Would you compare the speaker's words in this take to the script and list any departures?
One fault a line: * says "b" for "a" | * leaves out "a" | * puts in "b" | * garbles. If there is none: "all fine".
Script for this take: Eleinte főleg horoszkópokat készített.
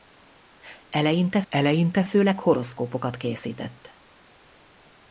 * puts in "eleinte"